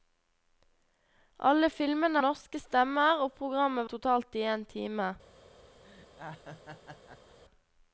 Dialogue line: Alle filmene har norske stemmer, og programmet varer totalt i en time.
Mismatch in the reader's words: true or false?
true